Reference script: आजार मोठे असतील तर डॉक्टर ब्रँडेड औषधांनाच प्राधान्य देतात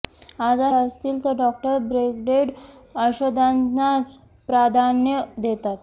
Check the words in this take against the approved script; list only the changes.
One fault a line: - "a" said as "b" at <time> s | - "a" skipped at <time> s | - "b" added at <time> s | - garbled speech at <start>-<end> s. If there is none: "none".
- "मोठे" skipped at 0.7 s